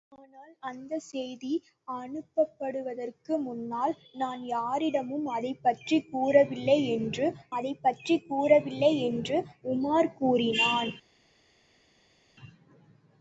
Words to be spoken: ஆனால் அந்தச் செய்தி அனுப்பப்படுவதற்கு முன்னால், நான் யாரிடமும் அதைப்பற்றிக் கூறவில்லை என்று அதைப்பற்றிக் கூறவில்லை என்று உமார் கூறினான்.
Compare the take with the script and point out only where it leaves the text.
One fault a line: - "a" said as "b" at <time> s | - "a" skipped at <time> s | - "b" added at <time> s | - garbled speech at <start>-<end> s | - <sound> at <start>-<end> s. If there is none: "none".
none